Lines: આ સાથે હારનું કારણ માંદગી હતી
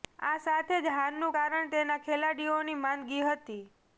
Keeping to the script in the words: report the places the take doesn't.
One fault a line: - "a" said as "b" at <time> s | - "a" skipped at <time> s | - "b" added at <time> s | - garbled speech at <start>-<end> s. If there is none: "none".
- "જ" added at 0.8 s
- "તેના ખેલાડીઓની" added at 1.7 s